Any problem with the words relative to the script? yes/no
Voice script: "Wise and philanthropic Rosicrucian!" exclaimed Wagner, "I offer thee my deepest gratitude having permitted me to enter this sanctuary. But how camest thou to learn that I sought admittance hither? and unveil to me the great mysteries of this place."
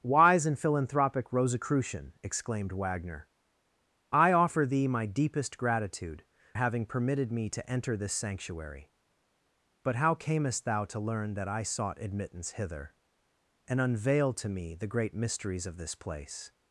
no